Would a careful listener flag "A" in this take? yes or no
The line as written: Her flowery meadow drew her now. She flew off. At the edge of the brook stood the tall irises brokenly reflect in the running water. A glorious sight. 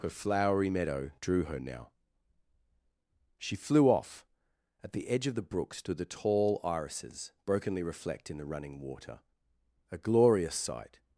no